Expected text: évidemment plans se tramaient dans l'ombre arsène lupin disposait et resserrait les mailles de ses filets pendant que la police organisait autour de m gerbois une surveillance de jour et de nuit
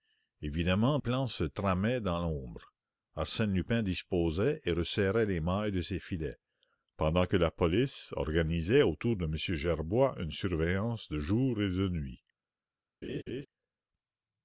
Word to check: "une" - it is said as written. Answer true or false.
true